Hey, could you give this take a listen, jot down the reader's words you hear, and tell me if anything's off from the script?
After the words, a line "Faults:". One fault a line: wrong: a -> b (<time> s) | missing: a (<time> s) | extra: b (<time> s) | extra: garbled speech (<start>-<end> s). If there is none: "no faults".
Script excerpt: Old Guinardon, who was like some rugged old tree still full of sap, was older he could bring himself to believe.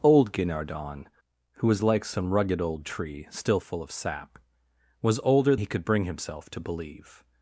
Old Guinardon, who was like some rugged old tree still full of sap, was older he could bring himself to believe.
Faults:
no faults